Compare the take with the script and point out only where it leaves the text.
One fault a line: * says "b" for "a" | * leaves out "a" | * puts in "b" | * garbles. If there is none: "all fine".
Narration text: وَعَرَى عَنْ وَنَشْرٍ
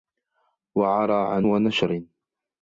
all fine